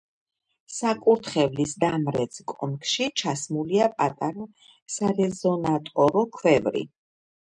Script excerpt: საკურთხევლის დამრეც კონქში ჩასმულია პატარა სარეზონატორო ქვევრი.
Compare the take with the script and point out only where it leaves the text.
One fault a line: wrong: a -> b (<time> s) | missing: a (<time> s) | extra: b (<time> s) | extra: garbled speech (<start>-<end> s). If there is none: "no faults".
no faults